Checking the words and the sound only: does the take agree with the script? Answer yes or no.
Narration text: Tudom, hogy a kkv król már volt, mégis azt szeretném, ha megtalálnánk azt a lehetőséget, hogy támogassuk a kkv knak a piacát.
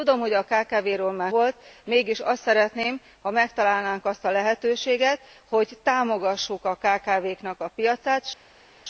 yes